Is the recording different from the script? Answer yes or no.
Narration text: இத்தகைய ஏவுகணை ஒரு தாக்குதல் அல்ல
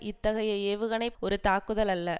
no